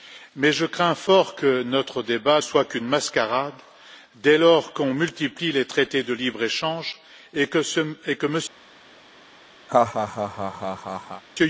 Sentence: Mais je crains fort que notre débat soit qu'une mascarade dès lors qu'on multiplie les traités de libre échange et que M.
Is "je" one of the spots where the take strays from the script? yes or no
no